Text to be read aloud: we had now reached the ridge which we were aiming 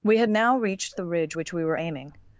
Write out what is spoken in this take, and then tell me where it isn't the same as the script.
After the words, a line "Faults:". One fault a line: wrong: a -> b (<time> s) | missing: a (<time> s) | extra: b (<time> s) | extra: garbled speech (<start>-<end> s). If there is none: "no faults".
we had now reached the ridge which we were aiming
Faults:
no faults